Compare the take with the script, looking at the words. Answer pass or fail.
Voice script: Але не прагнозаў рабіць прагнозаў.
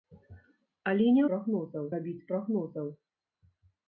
pass